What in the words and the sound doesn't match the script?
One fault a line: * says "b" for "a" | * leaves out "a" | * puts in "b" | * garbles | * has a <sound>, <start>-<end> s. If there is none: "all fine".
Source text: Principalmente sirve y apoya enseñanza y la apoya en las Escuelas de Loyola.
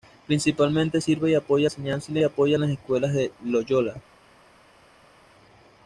all fine